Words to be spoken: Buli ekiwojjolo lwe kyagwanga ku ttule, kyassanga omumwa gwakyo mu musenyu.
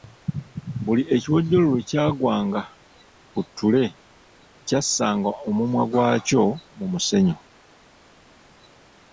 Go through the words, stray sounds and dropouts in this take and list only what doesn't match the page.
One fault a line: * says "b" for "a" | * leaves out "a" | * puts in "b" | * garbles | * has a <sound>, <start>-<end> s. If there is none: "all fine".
all fine